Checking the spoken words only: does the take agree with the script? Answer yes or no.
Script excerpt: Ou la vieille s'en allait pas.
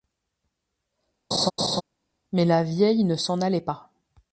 no